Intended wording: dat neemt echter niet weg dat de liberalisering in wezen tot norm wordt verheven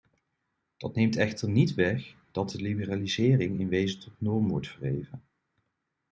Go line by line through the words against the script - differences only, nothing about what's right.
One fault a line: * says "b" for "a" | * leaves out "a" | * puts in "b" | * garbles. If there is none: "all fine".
all fine